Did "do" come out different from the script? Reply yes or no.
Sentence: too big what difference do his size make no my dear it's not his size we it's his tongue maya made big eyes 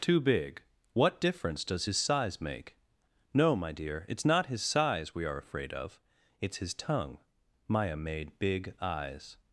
yes